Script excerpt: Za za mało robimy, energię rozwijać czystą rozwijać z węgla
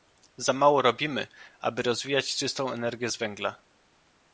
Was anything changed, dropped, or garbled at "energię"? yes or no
yes